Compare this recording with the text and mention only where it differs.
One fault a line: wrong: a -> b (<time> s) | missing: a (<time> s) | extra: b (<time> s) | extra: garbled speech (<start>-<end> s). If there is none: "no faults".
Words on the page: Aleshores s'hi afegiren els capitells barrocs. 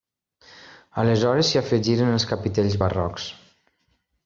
no faults